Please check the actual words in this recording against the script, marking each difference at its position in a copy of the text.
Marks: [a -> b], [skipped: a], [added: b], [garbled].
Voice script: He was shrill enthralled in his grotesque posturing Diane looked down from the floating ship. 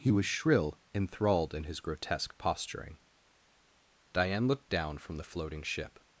He was shrill enthralled in his grotesque posturing Diane looked down from the floating ship.